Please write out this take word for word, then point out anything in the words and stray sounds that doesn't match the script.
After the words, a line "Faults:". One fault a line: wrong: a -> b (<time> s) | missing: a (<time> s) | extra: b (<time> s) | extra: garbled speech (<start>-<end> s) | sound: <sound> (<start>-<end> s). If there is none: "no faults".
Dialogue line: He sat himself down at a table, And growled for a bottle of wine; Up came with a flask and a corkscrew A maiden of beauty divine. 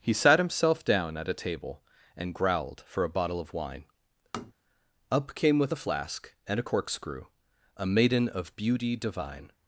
He sat himself down at a table, And growled for a bottle of wine; Up came with a flask and a corkscrew A maiden of beauty divine.
Faults:
sound: tap (4.3-4.5 s)